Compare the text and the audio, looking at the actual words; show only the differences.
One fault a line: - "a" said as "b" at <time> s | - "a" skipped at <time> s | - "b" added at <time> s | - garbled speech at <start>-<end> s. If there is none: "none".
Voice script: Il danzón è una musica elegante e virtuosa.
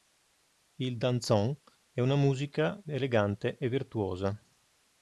none